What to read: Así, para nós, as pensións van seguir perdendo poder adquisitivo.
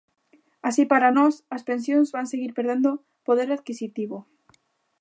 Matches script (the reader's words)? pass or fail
pass